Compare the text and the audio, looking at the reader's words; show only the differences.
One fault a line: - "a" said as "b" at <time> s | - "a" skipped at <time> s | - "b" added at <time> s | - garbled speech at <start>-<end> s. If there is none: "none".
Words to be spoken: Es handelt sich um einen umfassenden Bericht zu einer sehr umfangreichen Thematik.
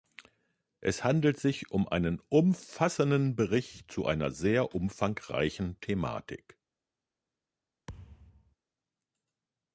none